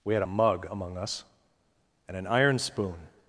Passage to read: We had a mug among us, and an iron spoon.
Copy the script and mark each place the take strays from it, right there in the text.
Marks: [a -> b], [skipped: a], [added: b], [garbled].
We had a mug among us, and an iron spoon.